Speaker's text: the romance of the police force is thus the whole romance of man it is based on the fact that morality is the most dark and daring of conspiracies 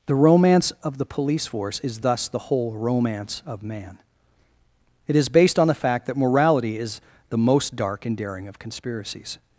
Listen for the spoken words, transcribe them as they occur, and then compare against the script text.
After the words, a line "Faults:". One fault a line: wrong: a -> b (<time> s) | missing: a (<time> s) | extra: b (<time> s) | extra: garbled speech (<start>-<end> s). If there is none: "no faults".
the romance of the police force is thus the whole romance of man it is based on the fact that morality is the most dark and daring of conspiracies
Faults:
no faults